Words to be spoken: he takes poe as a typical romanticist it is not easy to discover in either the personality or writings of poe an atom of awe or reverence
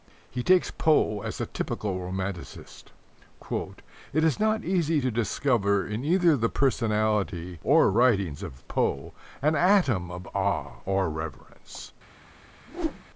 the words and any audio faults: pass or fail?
fail